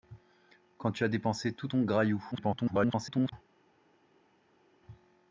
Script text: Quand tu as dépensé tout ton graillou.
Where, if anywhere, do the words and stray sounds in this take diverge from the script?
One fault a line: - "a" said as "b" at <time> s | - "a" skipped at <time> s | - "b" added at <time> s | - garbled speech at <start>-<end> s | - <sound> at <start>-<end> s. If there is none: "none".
- garbled speech at 2.3-3.3 s